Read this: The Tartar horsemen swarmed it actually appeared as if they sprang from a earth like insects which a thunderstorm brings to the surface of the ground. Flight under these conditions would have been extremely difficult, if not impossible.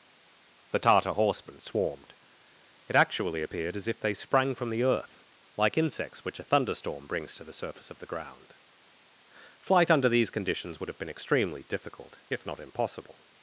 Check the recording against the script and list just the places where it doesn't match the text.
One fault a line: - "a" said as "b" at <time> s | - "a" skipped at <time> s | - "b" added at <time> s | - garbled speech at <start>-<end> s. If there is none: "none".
- "a" said as "the" at 4.7 s